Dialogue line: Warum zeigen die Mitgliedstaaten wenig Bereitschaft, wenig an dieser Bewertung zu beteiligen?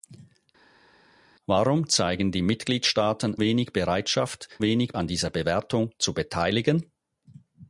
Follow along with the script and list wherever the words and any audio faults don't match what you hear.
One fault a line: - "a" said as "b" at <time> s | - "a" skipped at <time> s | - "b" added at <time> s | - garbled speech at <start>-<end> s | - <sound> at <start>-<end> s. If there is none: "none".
none